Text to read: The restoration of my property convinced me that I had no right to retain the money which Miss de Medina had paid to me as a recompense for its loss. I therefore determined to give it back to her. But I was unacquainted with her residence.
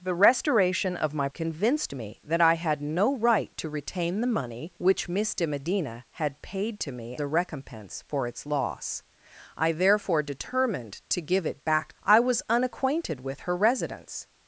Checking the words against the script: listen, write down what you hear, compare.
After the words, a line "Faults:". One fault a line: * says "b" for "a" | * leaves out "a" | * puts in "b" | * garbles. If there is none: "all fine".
The restoration of my convinced me that I had no right to retain the money which Miss de Medina had paid to me a recompense for its loss. I therefore determined to give it back I was unacquainted with her residence.
Faults:
* leaves out "property"
* leaves out "as"
* leaves out "to her But"